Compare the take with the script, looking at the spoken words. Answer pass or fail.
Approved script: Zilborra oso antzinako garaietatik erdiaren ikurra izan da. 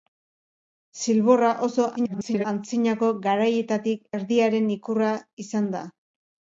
fail